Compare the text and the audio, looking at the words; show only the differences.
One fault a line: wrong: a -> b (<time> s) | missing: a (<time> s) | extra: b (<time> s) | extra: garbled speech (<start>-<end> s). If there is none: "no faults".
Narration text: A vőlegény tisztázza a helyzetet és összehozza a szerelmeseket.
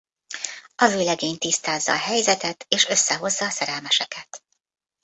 no faults